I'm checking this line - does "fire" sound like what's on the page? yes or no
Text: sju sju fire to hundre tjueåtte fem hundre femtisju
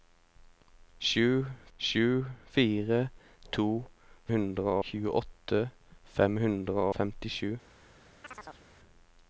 yes